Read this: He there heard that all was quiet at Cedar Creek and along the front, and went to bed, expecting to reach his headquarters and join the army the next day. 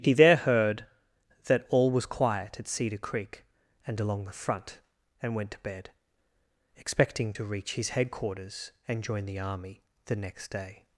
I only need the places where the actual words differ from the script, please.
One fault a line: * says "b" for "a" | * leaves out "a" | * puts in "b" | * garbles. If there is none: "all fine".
all fine